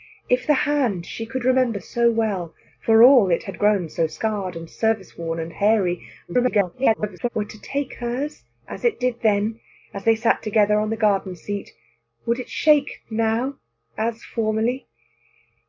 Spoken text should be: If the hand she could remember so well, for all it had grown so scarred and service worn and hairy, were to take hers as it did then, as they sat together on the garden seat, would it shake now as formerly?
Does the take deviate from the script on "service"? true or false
false